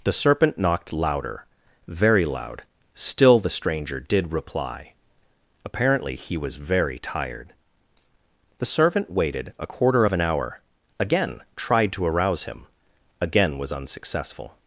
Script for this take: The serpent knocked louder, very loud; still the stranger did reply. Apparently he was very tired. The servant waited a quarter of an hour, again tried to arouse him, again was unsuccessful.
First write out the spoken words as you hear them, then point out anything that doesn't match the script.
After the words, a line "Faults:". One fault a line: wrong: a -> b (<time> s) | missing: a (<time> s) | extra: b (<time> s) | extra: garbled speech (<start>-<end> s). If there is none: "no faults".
The serpent knocked louder, very loud; still the stranger did reply. Apparently he was very tired. The servant waited a quarter of an hour, again tried to arouse him, again was unsuccessful.
Faults:
no faults